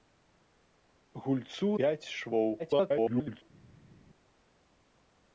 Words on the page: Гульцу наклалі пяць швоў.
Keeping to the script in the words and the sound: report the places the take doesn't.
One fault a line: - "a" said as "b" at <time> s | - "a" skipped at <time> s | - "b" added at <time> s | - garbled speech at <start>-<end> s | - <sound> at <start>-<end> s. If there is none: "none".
- "наклалі" skipped at 1.7 s
- garbled speech at 2.6-3.4 s